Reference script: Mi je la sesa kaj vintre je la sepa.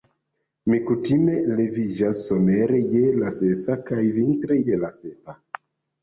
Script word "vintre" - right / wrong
right